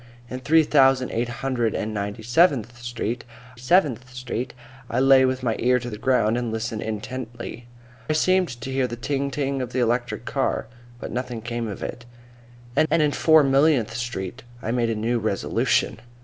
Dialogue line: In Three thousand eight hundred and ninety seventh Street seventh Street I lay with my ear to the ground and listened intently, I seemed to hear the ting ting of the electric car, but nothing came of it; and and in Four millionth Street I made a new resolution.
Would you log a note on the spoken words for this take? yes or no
no